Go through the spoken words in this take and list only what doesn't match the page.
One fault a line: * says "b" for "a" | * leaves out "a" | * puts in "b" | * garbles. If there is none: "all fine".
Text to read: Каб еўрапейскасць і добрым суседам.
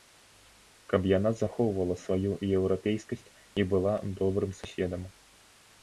* puts in "яна захоўвала сваю"
* puts in "была"